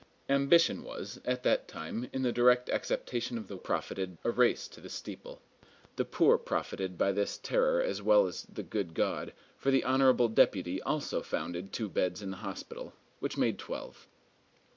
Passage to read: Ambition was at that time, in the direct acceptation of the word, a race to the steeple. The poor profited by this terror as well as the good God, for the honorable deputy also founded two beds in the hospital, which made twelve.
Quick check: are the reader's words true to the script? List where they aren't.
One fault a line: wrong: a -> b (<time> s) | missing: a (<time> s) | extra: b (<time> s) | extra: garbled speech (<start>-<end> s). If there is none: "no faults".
wrong: word -> profited (3.5 s)